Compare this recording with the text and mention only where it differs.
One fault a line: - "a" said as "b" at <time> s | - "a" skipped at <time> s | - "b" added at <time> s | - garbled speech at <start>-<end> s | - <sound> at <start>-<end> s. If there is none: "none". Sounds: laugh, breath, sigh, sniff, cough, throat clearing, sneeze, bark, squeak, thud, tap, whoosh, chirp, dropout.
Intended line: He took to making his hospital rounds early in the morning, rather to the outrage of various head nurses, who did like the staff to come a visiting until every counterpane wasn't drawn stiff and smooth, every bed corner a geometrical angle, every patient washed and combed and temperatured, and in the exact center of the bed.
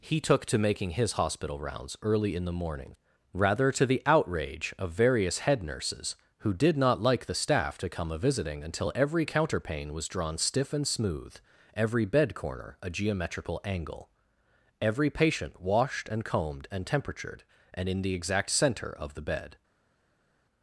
- "not" added at 6.8 s
- "wasn't" said as "was" at 9.9 s